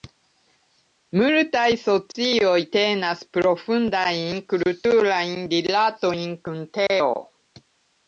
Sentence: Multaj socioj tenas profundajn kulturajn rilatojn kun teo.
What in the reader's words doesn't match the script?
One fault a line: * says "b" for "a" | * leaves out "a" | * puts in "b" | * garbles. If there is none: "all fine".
all fine